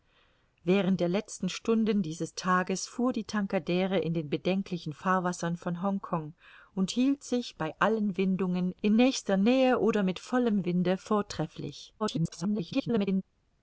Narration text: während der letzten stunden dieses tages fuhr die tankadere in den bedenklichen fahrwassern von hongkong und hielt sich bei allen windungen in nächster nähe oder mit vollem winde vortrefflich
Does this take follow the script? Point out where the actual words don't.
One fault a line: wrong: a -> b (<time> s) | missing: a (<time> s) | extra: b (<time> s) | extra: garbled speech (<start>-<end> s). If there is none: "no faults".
extra: garbled speech (12.0-13.2 s)